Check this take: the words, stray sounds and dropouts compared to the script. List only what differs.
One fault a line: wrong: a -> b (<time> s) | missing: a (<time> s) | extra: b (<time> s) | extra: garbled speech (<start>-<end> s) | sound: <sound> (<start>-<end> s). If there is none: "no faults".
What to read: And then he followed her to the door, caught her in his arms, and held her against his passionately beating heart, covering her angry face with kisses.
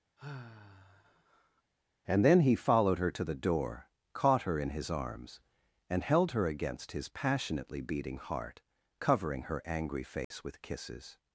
sound: sigh (0.2-1.6 s)
sound: dropout (10.2-10.3 s)